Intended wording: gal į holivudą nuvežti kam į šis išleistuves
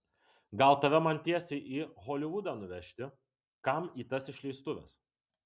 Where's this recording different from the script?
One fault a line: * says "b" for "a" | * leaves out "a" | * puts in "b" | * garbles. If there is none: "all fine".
* puts in "tave man tiesiai"
* says "tas" for "šis"